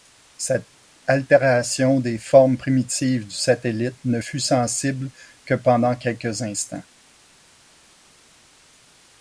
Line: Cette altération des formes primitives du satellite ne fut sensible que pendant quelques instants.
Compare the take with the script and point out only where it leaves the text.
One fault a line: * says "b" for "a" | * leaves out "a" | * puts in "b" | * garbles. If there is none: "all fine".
all fine